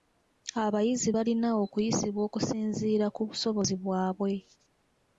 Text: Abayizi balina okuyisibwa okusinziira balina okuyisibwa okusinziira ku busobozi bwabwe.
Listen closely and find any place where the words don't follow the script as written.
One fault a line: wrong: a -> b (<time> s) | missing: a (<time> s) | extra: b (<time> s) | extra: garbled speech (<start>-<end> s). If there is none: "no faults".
missing: balina okuyisibwa okusinziira (3.1 s)